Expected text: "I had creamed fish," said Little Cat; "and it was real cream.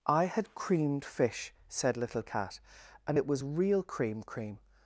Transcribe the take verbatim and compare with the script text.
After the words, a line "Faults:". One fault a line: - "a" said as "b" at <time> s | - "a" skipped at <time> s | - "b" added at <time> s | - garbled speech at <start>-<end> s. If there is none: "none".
"I had creamed fish," said Little Cat; "and it was real cream cream.
Faults:
- "cream" added at 4.2 s